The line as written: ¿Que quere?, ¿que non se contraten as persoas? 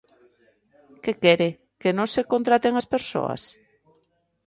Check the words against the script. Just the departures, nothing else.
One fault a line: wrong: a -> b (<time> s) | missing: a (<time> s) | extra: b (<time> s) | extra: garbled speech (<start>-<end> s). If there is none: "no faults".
no faults